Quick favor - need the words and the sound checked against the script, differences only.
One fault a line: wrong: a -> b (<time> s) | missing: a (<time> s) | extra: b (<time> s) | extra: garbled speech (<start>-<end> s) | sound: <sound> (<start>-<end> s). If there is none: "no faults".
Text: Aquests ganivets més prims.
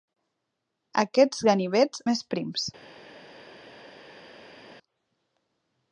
no faults